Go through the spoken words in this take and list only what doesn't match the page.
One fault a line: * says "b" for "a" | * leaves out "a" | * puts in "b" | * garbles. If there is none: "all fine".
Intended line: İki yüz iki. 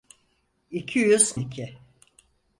all fine